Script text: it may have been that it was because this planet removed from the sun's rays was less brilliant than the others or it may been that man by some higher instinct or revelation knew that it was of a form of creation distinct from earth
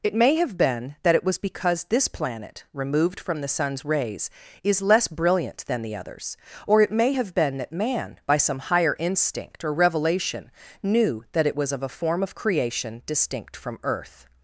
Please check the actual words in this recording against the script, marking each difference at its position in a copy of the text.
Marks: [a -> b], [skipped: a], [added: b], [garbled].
it may have been that it was because this planet removed from the sun's rays [was -> is] less brilliant than the others or it may [added: have] been that man by some higher instinct or revelation knew that it was of a form of creation distinct from earth